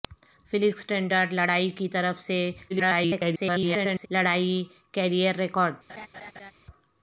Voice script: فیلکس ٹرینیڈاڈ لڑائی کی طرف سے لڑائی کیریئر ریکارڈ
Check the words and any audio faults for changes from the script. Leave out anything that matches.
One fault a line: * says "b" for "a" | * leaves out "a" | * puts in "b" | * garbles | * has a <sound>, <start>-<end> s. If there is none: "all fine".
* garbles
* has a laugh, 5.9-6.5 s